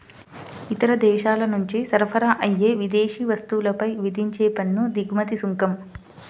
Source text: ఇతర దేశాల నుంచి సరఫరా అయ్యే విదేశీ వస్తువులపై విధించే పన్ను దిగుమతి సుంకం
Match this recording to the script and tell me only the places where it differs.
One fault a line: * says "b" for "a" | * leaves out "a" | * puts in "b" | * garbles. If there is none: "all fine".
all fine